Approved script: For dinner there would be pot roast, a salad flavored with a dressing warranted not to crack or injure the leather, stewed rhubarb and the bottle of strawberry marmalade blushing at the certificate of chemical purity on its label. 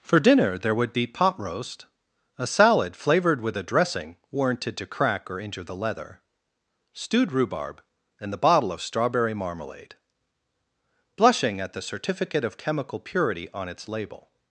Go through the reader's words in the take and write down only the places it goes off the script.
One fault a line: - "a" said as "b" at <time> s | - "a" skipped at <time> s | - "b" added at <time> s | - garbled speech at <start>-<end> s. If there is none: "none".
- "not" skipped at 4.8 s